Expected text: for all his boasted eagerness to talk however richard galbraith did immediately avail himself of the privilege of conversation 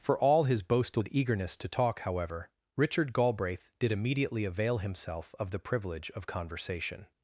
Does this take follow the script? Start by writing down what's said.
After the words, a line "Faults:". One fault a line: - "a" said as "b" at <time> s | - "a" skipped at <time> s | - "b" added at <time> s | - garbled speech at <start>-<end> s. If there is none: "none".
for all his boasted eagerness to talk however richard galbraith did immediately avail himself of the privilege of conversation
Faults:
none